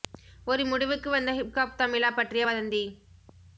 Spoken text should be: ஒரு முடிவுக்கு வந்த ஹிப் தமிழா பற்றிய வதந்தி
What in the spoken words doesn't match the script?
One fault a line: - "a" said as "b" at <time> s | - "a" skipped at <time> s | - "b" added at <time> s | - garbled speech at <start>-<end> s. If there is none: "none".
- "ஹாப்" added at 1.5 s